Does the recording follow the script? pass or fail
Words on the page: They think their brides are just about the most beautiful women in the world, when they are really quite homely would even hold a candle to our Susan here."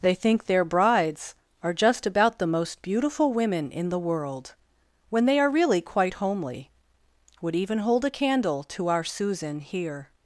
pass